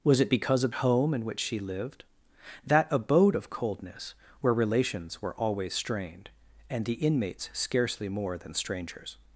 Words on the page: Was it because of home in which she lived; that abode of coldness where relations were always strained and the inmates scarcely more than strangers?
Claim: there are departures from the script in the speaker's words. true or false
false